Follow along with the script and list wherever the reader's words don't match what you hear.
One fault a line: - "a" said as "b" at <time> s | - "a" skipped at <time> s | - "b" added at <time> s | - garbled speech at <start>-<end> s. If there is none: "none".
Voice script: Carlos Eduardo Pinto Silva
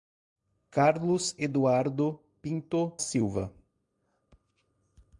none